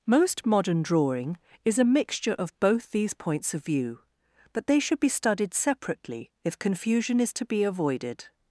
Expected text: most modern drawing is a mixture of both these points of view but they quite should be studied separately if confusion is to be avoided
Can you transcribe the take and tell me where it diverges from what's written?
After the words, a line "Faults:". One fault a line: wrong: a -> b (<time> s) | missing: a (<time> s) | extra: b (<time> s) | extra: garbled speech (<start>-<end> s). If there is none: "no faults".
most modern drawing is a mixture of both these points of view but they should be studied separately if confusion is to be avoided
Faults:
missing: quite (4.8 s)